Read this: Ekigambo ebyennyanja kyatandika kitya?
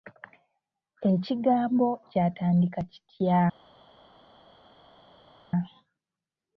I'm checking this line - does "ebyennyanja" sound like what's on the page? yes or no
no